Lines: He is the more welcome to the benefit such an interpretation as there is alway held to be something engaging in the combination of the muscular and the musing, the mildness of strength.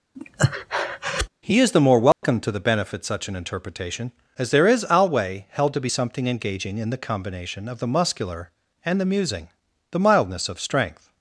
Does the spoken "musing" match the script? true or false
true